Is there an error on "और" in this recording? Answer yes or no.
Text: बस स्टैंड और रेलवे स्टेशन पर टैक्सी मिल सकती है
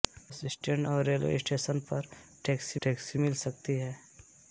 no